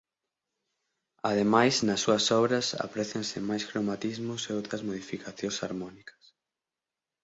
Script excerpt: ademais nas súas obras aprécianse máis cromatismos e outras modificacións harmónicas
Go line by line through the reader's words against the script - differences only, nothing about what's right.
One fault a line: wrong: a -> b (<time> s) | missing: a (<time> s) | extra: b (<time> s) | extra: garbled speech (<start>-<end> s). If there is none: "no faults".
no faults